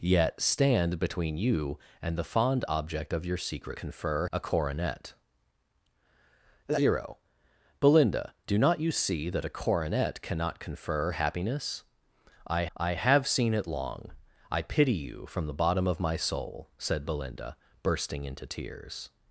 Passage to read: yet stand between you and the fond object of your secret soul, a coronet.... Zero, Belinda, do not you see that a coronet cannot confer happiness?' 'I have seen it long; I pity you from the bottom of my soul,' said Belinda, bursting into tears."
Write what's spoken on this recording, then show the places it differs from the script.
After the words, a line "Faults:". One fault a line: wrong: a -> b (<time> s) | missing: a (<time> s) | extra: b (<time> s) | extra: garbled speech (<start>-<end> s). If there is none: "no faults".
yet stand between you and the fond object of your secret confer, a coronet.... Zero, Belinda, do not you see that a coronet cannot confer happiness?' 'I I have seen it long; I pity you from the bottom of my soul,' said Belinda, bursting into tears."
Faults:
wrong: soul -> confer (3.8 s)
extra: I (12.8 s)